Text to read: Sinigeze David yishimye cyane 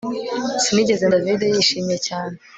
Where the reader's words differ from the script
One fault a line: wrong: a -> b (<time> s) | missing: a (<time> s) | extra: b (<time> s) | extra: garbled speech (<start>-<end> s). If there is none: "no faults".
no faults